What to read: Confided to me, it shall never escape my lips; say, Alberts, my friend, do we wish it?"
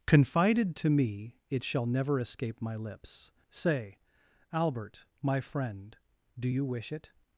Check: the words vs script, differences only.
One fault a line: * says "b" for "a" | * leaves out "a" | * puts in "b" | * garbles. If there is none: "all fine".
* says "Albert" for "Alberts"
* says "you" for "we"